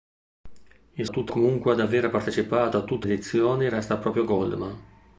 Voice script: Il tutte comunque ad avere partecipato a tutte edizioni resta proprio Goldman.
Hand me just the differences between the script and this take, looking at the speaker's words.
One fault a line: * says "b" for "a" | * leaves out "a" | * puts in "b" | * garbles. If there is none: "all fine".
all fine